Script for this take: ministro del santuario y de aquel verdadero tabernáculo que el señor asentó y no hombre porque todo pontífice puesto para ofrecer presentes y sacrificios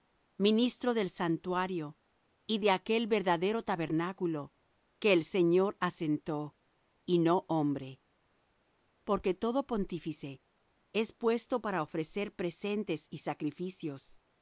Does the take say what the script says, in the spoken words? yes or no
no